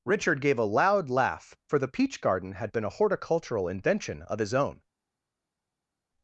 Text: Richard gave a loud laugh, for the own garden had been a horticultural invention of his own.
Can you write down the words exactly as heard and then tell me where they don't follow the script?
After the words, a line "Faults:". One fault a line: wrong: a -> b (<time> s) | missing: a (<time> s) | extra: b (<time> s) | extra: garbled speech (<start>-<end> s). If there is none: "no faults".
Richard gave a loud laugh, for the peach garden had been a horticultural invention of his own.
Faults:
wrong: own -> peach (1.9 s)